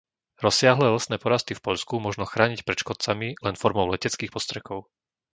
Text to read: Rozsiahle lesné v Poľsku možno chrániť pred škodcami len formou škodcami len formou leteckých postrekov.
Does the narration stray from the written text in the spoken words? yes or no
yes